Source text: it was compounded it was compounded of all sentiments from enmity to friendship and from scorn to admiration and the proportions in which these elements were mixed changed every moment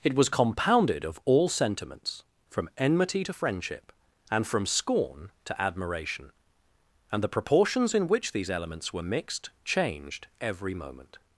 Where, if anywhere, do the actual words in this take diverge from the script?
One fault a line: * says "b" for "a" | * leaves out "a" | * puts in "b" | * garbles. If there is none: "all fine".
* leaves out "it was compounded"